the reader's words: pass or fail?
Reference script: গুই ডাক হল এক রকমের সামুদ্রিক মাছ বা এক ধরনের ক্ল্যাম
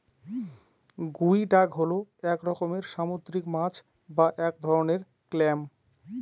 pass